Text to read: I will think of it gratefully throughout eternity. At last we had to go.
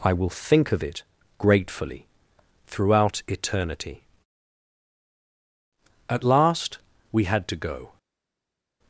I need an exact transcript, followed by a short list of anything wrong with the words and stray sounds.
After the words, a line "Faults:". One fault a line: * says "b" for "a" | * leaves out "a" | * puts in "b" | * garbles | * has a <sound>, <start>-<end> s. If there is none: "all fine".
I will think of it gratefully throughout eternity. At last we had to go.
Faults:
all fine